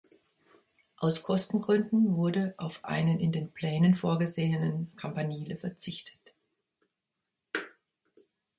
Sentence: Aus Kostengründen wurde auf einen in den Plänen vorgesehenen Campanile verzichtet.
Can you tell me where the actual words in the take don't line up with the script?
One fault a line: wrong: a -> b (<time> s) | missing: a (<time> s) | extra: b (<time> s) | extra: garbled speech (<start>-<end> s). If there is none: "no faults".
no faults